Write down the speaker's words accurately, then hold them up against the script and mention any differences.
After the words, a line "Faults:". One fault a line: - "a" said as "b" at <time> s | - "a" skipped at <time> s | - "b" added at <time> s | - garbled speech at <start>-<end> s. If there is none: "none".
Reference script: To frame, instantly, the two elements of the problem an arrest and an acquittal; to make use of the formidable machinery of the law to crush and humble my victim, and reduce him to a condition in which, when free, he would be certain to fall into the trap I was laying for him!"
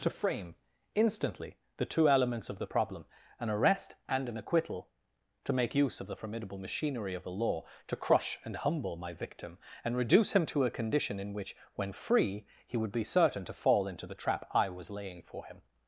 To frame, instantly, the two elements of the problem an arrest and an acquittal; to make use of the formidable machinery of the law to crush and humble my victim, and reduce him to a condition in which, when free, he would be certain to fall into the trap I was laying for him!"
Faults:
none